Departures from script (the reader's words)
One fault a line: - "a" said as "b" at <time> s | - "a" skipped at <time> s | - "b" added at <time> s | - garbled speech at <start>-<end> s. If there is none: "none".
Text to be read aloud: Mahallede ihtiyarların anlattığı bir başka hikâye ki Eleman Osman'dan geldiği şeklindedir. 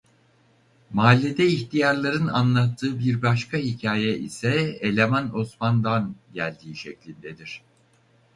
- "ki" said as "ise" at 4.2 s